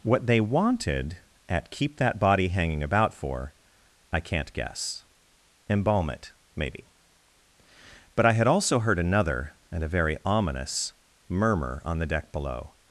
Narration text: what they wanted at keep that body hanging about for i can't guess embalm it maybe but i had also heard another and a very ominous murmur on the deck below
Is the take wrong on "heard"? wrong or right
right